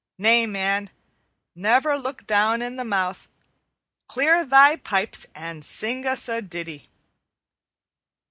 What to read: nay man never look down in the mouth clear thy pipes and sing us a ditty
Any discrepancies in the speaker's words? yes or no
no